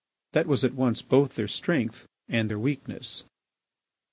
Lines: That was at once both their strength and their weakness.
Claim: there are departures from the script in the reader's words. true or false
false